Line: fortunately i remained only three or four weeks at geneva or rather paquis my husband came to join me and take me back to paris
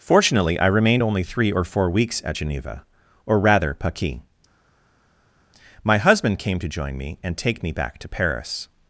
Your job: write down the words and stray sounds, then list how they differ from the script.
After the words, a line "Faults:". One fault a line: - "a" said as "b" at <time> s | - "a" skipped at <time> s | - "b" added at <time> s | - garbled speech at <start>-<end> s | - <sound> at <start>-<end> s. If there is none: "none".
fortunately i remained only three or four weeks at geneva or rather paquis my husband came to join me and take me back to paris
Faults:
none